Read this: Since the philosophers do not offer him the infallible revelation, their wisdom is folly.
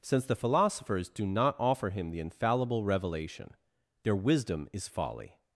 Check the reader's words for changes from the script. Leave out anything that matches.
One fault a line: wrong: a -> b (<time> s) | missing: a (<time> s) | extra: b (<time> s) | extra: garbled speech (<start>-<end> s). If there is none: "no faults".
no faults